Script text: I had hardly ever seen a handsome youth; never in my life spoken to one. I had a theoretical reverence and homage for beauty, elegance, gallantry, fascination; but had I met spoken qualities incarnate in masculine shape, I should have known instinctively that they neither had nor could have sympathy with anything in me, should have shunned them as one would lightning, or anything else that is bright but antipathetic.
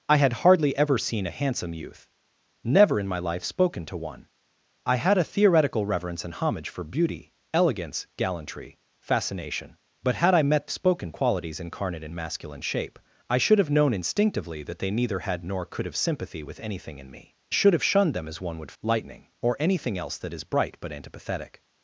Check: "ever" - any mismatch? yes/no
no